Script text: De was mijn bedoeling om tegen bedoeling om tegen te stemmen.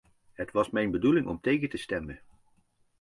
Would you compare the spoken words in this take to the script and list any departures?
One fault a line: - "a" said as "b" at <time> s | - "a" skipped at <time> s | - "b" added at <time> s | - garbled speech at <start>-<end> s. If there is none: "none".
- "De" said as "Het" at 0.3 s
- "bedoeling om tegen" skipped at 1.7 s